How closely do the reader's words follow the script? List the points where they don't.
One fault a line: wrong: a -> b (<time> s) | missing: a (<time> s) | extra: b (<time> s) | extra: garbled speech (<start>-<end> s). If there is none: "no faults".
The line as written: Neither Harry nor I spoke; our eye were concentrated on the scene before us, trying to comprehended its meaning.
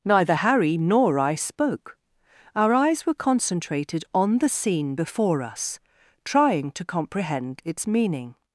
wrong: eye -> eyes (2.7 s)
wrong: comprehended -> comprehend (6.9 s)